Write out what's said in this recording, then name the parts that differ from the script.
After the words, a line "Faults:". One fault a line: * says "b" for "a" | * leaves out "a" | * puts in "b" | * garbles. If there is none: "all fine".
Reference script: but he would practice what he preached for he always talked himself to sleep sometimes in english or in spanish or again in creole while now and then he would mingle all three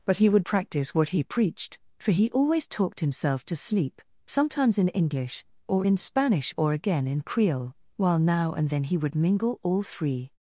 but he would practice what he preached for he always talked himself to sleep sometimes in english or in spanish or again in creole while now and then he would mingle all three
Faults:
all fine